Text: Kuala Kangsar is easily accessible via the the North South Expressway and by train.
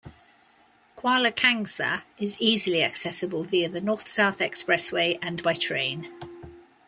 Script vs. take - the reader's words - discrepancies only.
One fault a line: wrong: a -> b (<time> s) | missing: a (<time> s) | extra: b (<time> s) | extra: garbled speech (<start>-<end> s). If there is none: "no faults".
missing: the (3.8 s)